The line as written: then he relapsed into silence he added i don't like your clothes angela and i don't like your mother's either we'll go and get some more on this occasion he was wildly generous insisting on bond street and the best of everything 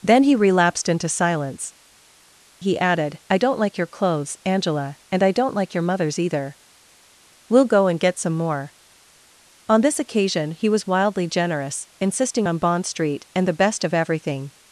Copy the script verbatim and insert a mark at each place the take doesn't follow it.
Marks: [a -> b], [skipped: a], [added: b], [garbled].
then he relapsed into silence he added i don't like your clothes angela and i don't like your mother's either we'll go and get some more on this occasion he was wildly generous insisting on bond street and the best of everything